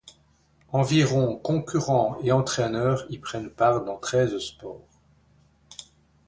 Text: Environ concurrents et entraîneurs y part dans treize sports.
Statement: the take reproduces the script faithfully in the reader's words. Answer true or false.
false